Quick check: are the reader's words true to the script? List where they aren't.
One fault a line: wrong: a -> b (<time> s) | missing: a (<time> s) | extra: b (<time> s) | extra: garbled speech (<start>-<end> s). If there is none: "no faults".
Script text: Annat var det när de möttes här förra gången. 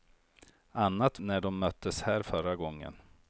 missing: var det (1.2 s)